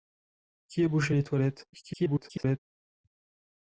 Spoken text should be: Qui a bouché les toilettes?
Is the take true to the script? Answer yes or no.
no